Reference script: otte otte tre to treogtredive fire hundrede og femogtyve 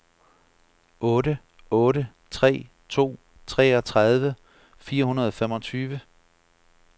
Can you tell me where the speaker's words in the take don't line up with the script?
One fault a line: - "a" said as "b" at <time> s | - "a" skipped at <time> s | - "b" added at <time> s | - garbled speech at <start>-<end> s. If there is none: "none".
none